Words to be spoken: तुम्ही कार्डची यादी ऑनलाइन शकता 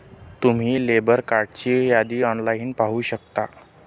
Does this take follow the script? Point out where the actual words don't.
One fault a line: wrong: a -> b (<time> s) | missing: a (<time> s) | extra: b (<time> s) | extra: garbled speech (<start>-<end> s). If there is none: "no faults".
extra: लेबर (0.8 s)
extra: पाहू (2.7 s)